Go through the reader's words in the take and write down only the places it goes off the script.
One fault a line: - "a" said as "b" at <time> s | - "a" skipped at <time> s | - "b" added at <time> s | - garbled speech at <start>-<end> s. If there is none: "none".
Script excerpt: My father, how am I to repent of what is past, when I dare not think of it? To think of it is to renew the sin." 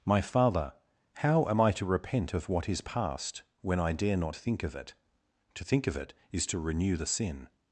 none